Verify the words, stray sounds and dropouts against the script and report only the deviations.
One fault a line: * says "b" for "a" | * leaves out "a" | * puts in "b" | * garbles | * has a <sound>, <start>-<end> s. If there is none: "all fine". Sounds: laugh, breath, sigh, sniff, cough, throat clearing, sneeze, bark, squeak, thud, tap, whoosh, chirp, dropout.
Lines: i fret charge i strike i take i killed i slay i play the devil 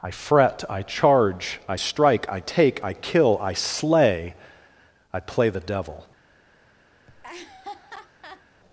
* puts in "i"
* says "kill" for "killed"
* has a laugh, 7.1-8.4 s